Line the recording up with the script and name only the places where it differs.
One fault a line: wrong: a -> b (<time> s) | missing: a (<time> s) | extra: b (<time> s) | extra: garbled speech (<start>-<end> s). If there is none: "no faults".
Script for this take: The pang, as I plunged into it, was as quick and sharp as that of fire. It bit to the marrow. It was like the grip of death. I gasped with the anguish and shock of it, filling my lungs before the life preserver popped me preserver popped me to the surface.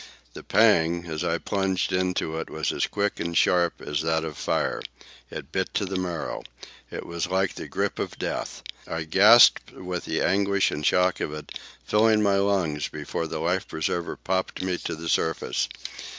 missing: preserver popped me (14.8 s)